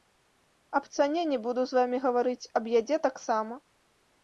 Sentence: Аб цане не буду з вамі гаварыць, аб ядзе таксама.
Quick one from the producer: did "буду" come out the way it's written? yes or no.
yes